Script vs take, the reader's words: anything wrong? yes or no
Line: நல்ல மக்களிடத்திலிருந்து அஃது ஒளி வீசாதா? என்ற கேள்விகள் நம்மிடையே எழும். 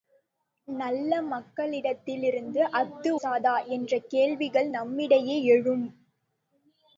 yes